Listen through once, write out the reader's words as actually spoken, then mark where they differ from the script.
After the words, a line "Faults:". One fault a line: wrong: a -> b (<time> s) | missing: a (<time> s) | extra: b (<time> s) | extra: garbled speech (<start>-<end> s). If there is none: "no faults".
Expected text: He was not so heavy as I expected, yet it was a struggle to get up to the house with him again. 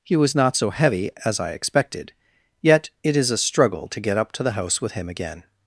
He was not so heavy as I expected, yet it is a struggle to get up to the house with him again.
Faults:
wrong: was -> is (3.2 s)